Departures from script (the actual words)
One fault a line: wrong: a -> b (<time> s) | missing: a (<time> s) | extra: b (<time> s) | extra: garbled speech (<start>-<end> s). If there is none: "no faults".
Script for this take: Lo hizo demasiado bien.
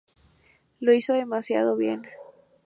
no faults